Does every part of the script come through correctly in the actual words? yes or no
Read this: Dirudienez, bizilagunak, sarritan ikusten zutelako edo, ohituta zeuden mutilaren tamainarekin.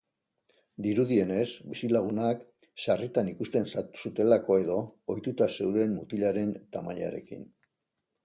yes